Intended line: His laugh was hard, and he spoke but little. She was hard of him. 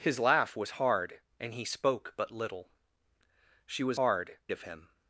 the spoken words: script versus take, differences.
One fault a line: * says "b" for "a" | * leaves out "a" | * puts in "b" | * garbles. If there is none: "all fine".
all fine